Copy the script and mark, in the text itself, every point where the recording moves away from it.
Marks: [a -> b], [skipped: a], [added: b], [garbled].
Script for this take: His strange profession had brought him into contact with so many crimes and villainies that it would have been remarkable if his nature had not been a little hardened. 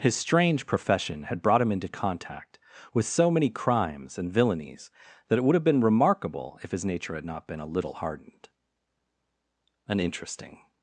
His strange profession had brought him into contact with so many crimes and villainies that it would have been remarkable if his nature had not been a little hardened. [added: An interesting]